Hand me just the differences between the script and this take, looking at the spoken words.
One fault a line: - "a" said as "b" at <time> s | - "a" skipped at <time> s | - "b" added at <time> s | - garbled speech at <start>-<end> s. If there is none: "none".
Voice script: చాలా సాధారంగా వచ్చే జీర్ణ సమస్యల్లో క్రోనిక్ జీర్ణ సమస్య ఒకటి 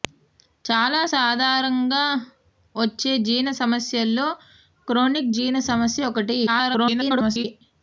- garbled speech at 6.5-7.4 s